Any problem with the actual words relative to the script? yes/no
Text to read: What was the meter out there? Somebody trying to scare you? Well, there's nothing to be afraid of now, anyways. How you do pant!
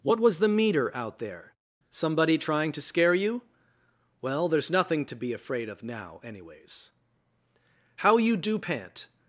no